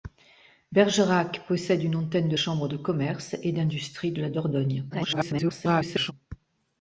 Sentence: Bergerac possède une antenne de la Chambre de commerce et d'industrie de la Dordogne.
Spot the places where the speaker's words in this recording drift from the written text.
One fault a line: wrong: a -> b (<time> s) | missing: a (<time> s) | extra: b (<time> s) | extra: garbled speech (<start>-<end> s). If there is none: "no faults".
missing: la (2.4 s)
extra: garbled speech (4.9-6.1 s)